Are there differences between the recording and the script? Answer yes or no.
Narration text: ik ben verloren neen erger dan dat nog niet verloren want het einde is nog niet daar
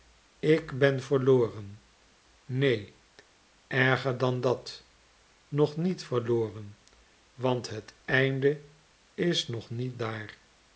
no